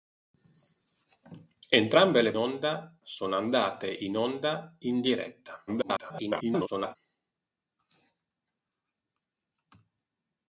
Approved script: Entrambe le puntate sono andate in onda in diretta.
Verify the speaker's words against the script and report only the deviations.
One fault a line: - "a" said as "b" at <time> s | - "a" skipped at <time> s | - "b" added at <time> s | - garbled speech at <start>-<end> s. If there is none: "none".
- "puntate" said as "onda" at 2.4 s
- garbled speech at 5.7-7.0 s